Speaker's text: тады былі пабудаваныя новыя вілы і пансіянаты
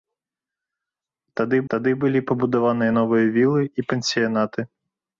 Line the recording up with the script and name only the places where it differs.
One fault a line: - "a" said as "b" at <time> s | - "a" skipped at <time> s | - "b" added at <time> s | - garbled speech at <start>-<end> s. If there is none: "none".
- "тады" added at 1.7 s